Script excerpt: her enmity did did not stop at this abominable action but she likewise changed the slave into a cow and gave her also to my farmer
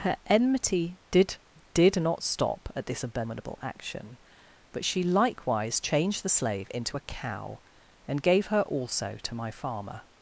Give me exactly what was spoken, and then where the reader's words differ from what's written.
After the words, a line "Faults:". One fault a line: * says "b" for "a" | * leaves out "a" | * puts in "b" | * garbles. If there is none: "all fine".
her enmity did did not stop at this abominable action but she likewise changed the slave into a cow and gave her also to my farmer
Faults:
all fine